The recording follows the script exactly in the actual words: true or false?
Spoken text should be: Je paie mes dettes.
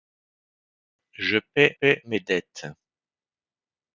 false